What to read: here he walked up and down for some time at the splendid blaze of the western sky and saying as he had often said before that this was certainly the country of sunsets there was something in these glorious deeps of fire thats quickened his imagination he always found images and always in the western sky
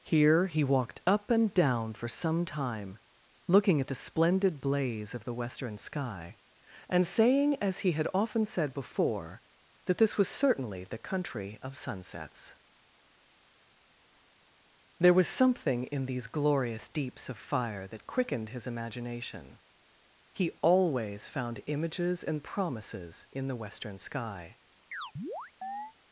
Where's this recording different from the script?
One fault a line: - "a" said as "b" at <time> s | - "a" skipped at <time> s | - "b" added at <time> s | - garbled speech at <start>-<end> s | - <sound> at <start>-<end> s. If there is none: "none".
- "looking" added at 3.5 s
- "thats" said as "that" at 17.9 s
- "always" said as "promises" at 22.4 s
- chirp at 24.9-25.9 s